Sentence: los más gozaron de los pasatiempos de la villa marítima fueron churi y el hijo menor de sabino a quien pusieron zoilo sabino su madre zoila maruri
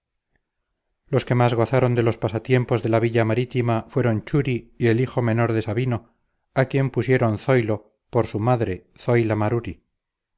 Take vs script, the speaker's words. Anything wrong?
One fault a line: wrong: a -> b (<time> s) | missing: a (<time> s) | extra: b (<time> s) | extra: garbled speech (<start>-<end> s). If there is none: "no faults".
extra: que (1.2 s)
wrong: sabino -> por (8.1 s)